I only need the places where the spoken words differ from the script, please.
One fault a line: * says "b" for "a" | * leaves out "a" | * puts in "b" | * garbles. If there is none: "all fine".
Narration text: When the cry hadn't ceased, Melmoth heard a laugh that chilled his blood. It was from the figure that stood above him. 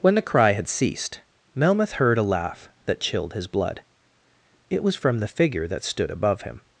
* says "had" for "hadn't"